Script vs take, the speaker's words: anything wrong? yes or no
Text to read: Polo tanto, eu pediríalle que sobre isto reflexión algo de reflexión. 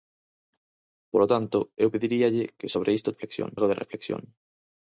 no